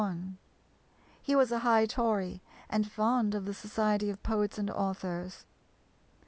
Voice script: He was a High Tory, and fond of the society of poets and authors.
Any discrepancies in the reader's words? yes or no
no